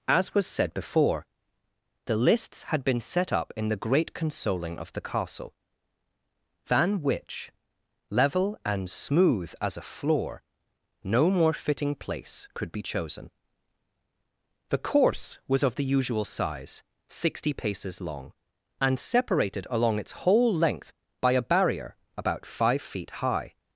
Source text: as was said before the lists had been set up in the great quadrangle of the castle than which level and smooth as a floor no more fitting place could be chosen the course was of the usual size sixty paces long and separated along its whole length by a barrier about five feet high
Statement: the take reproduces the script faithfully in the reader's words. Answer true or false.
false